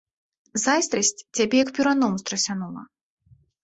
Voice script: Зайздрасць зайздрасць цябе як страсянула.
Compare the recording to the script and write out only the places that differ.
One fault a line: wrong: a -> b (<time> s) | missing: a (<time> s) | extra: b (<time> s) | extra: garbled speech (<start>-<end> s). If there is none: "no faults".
missing: зайздрасць (1.1 s)
extra: перуном (1.8 s)